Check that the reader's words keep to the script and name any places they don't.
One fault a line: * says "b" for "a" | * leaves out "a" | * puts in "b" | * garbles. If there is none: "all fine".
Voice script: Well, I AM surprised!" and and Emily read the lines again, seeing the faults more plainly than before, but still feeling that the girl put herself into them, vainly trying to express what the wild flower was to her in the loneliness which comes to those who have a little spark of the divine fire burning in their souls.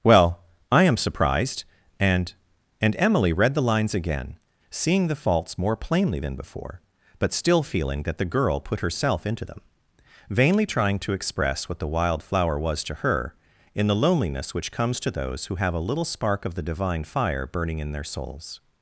all fine